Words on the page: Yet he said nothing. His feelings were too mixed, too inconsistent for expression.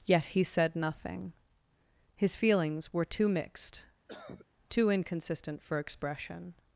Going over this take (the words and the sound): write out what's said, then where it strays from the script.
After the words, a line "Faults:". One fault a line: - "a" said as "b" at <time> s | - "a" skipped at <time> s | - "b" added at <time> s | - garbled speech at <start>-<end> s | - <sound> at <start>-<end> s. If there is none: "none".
Yet he said nothing. His feelings were too mixed, too inconsistent for expression.
Faults:
- cough at 4.1-4.5 s